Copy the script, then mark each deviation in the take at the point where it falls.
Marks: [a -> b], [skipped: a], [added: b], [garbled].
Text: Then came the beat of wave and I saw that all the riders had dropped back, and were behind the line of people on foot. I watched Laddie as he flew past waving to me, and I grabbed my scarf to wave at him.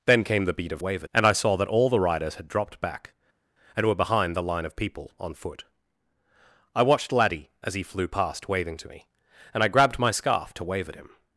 Then came the beat of wave and I saw that all the riders had dropped back, and were behind the line of people on foot. I watched Laddie as he flew past waving to me, and I grabbed my scarf to wave at him.